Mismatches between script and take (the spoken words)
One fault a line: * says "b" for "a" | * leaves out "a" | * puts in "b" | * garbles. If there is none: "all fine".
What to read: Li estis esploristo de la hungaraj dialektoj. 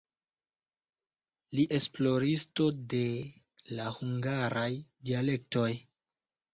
* leaves out "estis"